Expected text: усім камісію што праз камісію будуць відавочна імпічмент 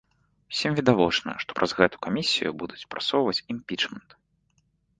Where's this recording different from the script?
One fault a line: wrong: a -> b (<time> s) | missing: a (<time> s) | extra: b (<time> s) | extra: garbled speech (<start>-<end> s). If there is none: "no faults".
wrong: камісію -> відавочна (0.8 s)
extra: гэту (1.8 s)
wrong: відавочна -> прасоўваць (3.0 s)